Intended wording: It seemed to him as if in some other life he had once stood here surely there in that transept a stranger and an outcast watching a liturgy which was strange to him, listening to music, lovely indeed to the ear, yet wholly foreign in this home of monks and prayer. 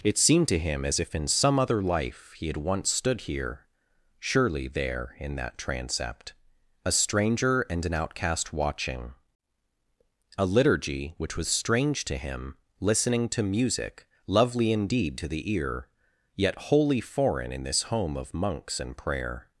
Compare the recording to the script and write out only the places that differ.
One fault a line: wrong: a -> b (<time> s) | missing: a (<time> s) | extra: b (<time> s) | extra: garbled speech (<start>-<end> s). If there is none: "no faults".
no faults